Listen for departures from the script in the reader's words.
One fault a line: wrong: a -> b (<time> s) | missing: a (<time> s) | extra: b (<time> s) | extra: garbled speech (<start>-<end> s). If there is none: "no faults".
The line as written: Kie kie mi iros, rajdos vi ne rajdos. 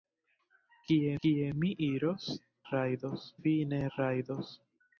no faults